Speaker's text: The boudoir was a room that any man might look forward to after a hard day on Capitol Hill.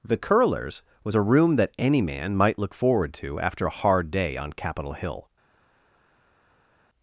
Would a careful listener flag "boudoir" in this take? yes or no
yes